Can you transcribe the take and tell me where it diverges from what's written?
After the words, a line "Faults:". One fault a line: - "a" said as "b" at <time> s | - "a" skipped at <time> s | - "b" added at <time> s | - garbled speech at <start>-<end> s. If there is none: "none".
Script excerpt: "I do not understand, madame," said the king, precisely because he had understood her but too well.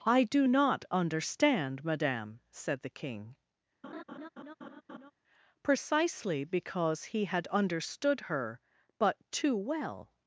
"I do not understand, madame," said the king, precisely because he had understood her but too well.
Faults:
none